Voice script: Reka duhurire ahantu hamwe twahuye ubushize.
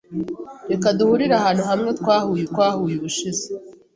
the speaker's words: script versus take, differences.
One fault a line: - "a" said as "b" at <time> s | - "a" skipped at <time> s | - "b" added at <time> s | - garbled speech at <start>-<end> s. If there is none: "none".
- "twahuye" added at 2.5 s